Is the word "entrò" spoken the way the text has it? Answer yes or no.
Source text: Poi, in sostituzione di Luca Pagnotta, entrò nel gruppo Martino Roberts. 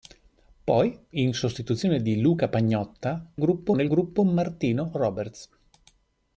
no